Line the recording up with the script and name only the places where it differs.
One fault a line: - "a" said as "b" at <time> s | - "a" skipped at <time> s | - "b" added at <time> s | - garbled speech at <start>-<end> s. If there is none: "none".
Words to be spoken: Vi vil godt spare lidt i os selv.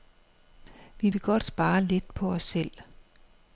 - "i" said as "på" at 2.1 s